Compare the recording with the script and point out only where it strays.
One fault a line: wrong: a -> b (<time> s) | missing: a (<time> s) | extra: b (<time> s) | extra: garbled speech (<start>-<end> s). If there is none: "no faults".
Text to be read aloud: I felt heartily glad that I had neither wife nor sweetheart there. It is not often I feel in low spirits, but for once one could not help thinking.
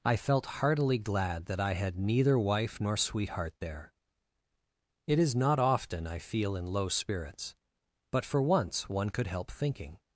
missing: not (9.3 s)